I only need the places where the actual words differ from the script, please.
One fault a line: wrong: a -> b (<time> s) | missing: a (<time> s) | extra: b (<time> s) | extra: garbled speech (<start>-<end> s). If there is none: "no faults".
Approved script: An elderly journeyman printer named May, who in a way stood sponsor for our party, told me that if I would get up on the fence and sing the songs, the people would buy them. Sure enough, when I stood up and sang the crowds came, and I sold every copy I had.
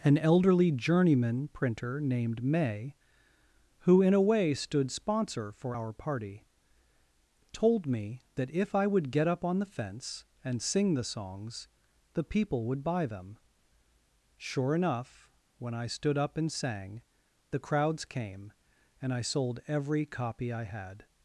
no faults